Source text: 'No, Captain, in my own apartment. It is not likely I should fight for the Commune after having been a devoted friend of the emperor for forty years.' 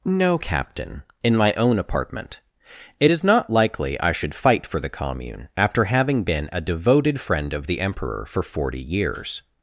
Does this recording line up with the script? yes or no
yes